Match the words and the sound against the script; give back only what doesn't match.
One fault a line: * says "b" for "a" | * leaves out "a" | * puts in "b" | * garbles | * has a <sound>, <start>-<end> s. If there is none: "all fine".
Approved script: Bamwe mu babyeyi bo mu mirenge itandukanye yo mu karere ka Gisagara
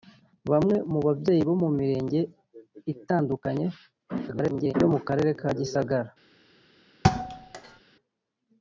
* garbles
* has a thud, 7.0-7.8 s